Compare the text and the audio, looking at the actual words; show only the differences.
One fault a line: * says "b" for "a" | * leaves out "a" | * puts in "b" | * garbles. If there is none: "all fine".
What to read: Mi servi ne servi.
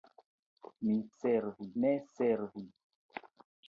all fine